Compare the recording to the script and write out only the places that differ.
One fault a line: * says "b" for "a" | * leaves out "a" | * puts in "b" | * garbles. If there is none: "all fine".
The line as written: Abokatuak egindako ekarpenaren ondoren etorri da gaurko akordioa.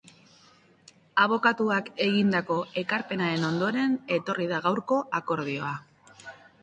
all fine